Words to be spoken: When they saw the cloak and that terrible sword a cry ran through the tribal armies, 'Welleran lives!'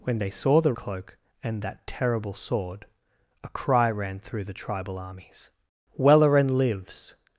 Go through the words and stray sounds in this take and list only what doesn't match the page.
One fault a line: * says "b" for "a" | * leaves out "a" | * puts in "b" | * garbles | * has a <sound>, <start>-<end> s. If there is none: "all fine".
all fine